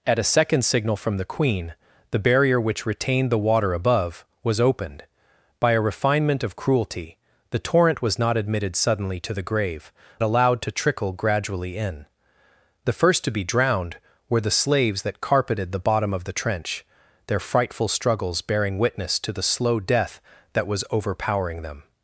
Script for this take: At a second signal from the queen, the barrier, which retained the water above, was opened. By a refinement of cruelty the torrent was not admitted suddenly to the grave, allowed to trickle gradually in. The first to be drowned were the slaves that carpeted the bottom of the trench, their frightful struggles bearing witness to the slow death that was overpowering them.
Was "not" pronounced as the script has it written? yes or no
yes